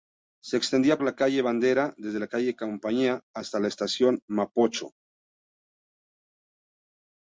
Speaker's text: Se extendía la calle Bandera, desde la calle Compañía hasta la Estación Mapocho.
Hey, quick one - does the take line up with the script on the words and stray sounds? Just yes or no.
yes